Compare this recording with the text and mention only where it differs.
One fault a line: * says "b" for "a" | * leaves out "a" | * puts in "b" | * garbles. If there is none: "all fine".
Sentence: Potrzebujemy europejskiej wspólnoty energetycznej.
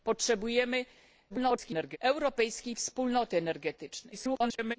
* garbles
* garbles